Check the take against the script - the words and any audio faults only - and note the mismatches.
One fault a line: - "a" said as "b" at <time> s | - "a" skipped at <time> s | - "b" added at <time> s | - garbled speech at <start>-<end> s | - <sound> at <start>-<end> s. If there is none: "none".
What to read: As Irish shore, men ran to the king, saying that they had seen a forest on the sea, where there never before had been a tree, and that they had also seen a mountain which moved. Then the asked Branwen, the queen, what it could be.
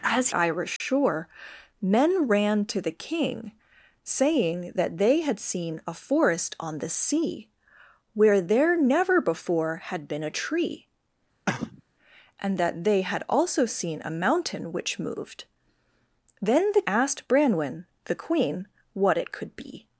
- dropout at 0.8-0.8 s
- cough at 11.5-11.8 s